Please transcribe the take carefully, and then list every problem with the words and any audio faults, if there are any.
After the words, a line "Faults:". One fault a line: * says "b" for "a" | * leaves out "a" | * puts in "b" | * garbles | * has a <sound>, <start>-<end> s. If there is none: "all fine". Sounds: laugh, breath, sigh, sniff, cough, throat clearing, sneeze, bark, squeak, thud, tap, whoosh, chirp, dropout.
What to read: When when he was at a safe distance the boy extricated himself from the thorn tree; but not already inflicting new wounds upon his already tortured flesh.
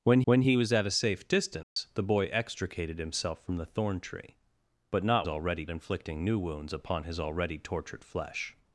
When when he was at a safe distance the boy extricated himself from the thorn tree; but not already inflicting new wounds upon his already tortured flesh.
Faults:
* has a dropout, 1.6-1.8 s